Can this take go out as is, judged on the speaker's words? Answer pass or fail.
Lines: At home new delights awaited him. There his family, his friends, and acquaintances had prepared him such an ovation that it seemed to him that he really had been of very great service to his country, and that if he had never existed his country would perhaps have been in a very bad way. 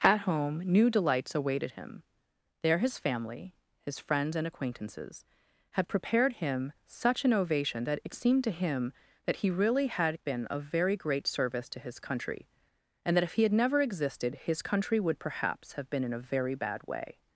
pass